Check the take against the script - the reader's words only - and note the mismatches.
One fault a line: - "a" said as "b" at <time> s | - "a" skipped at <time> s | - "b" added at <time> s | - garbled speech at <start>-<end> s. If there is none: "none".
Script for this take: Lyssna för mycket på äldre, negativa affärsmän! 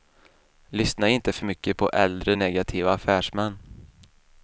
- "inte" added at 1.1 s